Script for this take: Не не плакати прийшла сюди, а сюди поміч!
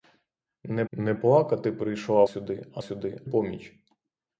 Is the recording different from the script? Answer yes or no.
no